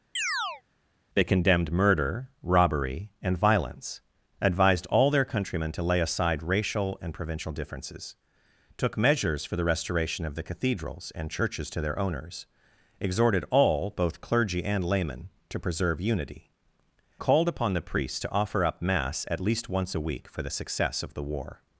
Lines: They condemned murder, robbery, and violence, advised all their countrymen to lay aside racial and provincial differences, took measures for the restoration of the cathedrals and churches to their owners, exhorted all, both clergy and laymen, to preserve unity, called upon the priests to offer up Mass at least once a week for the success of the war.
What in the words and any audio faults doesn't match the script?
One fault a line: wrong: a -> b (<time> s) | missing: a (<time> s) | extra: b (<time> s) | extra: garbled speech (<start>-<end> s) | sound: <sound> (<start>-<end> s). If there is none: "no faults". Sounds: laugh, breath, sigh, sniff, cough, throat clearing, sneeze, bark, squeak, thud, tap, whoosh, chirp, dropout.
sound: chirp (0.2-0.6 s)